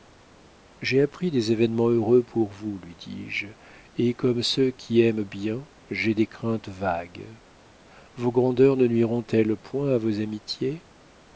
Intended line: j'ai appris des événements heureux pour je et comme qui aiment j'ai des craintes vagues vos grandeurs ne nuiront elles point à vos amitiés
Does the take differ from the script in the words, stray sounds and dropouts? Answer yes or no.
yes